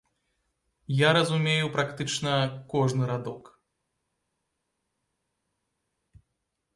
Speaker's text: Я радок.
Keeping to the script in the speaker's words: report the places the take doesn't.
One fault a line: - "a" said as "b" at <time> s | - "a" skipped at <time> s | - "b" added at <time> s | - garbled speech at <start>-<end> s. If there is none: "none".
- "разумею практычна кожны" added at 1.1 s